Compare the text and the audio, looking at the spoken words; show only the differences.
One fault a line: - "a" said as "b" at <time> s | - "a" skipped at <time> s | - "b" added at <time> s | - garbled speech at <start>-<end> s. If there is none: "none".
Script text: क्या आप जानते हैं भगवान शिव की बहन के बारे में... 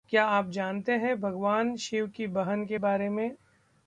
none